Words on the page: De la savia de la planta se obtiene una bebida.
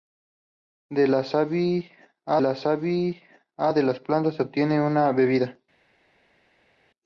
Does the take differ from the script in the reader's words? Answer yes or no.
yes